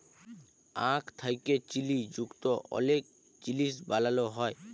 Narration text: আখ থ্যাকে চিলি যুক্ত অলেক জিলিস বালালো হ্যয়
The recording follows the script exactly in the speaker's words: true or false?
true